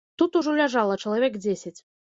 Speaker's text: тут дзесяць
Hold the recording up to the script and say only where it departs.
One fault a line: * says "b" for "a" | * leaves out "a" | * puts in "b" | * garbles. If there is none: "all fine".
* puts in "ужо ляжала чалавек"